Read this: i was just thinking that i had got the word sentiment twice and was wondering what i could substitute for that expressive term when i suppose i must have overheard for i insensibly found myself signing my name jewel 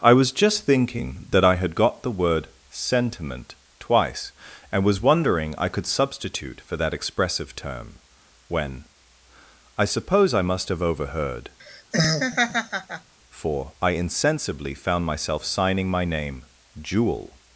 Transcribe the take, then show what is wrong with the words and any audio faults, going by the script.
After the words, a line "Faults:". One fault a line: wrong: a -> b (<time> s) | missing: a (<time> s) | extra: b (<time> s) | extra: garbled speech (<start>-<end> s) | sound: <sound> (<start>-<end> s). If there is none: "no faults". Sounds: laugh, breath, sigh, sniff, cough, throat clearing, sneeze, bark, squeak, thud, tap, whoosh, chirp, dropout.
i was just thinking that i had got the word sentiment twice and was wondering i could substitute for that expressive term when i suppose i must have overheard for i insensibly found myself signing my name jewel
Faults:
missing: what (5.5 s)
sound: laugh (11.6-13.1 s)